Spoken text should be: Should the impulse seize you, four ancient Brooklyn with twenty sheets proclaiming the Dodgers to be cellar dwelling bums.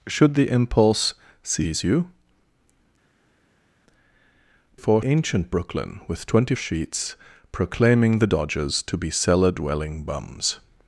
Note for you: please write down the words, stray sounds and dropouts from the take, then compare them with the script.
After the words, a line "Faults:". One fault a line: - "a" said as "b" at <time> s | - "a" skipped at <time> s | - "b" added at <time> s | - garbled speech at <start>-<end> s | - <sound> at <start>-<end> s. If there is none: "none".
Should the impulse seize you, four ancient Brooklyn with twenty sheets proclaiming the Dodgers to be cellar dwelling bums.
Faults:
none